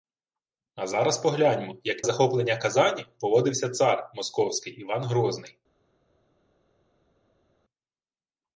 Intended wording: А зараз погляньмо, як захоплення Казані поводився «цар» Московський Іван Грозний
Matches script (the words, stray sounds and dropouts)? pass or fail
pass